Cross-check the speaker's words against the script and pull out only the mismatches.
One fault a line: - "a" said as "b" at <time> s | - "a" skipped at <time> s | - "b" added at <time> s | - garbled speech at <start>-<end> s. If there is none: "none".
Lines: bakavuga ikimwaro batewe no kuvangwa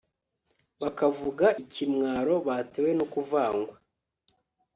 none